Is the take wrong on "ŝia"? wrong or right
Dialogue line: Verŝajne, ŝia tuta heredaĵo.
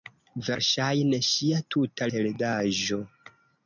right